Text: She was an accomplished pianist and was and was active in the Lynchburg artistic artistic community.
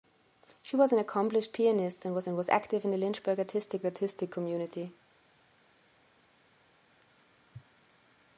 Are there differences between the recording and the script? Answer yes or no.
no